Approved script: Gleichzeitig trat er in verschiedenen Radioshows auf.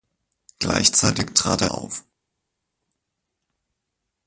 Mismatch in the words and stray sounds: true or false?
true